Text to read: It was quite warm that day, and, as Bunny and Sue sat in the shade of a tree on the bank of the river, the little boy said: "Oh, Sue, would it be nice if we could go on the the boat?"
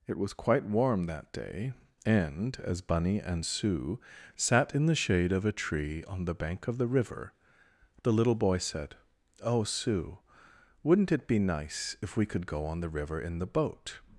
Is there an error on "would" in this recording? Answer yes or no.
yes